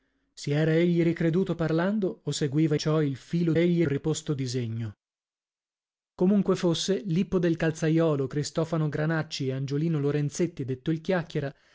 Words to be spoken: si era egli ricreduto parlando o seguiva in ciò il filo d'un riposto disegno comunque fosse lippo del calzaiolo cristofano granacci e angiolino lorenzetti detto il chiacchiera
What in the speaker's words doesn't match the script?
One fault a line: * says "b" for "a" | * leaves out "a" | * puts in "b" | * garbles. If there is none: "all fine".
* leaves out "in"
* says "egli" for "d'un"